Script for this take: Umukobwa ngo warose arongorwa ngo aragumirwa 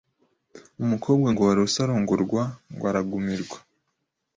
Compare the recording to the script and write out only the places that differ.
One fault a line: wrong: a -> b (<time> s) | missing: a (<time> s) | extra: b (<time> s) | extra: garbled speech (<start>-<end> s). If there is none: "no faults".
no faults